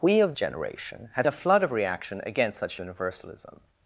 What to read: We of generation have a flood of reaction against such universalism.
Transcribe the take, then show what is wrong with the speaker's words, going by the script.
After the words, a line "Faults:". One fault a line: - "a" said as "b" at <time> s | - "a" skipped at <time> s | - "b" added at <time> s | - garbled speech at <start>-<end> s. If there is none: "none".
We of generation have a flood of reaction against such universalism.
Faults:
none